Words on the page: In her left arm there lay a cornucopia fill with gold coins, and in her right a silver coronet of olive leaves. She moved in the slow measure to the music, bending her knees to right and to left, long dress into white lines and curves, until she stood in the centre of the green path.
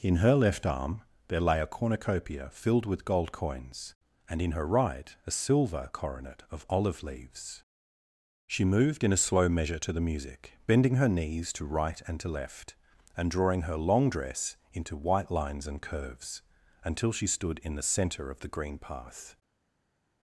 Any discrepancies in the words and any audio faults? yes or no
yes